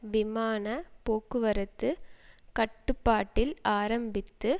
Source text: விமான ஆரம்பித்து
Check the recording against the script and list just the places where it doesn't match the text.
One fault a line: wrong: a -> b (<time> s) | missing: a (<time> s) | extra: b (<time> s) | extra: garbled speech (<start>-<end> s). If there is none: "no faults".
extra: போக்குவரத்து கட்டுப்பாட்டில் (1.0 s)